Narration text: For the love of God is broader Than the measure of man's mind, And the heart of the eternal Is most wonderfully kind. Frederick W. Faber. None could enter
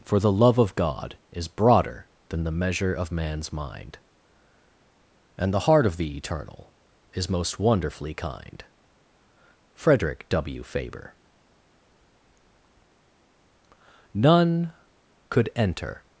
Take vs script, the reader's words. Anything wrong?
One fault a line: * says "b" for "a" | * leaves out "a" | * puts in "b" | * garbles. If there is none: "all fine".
all fine